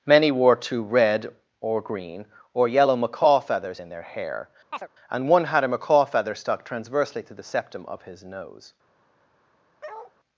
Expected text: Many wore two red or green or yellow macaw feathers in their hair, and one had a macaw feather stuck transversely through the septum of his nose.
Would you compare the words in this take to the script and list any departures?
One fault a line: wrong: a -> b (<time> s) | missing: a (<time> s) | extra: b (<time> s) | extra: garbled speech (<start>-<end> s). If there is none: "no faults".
wrong: through -> to (7.2 s)